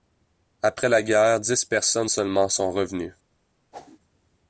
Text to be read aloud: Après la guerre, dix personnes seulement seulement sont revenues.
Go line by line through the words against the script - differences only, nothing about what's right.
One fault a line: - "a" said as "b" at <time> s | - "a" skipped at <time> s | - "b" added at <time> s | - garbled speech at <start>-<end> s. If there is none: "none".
- "seulement" skipped at 2.5 s